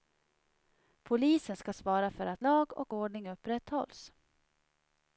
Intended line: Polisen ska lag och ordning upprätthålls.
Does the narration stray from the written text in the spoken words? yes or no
yes